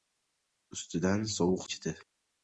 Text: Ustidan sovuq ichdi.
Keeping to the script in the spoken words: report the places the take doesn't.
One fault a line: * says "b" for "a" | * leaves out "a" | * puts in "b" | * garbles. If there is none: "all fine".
all fine